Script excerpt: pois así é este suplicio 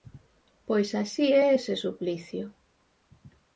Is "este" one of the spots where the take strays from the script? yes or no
yes